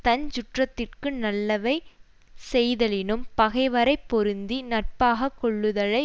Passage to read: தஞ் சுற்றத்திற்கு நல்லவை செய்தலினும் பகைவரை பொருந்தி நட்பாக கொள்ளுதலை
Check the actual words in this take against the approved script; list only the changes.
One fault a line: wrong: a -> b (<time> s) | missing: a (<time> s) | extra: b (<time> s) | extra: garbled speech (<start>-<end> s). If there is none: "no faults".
no faults